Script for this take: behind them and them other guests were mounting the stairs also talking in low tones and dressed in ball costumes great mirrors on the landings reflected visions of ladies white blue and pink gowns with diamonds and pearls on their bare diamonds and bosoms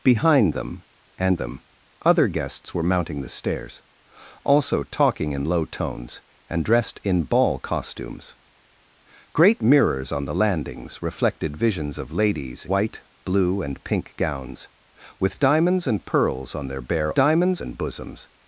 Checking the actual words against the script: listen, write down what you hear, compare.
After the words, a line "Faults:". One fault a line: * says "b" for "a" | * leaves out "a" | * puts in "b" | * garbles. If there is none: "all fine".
behind them and them other guests were mounting the stairs also talking in low tones and dressed in ball costumes great mirrors on the landings reflected visions of ladies white blue and pink gowns with diamonds and pearls on their bare diamonds and bosoms
Faults:
all fine